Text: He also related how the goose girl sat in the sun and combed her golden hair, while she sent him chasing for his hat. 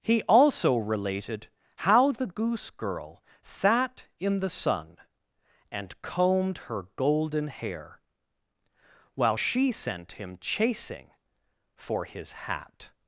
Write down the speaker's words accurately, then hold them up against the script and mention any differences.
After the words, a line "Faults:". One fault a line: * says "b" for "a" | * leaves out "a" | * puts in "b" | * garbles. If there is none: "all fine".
He also related how the goose girl sat in the sun and combed her golden hair, while she sent him chasing for his hat.
Faults:
all fine